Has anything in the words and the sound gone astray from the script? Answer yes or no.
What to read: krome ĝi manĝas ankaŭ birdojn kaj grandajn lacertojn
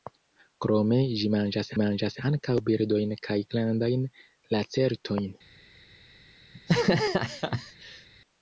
yes